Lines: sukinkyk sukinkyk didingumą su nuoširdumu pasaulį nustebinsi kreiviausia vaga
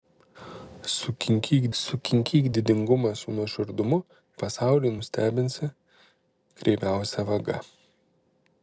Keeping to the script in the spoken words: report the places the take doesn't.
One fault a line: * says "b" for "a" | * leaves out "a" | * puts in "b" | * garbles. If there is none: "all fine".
all fine